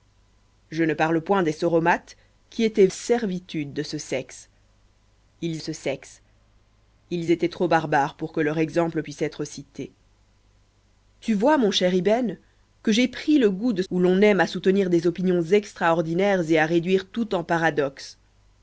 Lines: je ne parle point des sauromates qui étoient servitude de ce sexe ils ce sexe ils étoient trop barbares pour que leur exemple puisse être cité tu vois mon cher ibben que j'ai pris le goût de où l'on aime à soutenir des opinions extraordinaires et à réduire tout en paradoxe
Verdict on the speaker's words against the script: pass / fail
pass